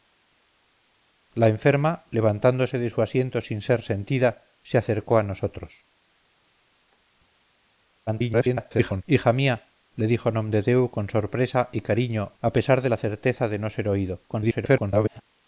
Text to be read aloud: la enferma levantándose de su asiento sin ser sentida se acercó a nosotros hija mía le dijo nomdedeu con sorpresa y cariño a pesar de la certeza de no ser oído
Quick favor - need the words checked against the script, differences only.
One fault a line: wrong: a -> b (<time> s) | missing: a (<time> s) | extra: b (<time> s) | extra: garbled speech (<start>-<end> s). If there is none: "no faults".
extra: garbled speech (8.1-9.0 s)
extra: garbled speech (14.3-15.2 s)